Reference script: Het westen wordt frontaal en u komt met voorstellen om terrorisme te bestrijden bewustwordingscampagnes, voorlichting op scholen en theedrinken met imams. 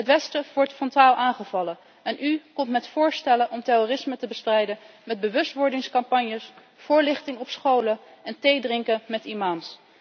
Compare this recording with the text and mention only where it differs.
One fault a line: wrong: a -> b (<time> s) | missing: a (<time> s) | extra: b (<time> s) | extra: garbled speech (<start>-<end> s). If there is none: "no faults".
extra: aangevallen (1.1 s)
extra: met (5.0 s)